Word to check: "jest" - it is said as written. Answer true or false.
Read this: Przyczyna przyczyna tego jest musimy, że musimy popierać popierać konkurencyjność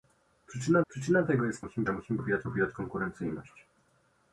true